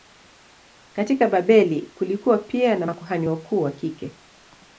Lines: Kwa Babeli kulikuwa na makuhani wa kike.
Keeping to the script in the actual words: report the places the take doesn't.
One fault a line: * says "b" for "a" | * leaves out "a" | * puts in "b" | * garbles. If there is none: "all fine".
* says "Katika" for "Kwa"
* puts in "pia"
* puts in "wakuu"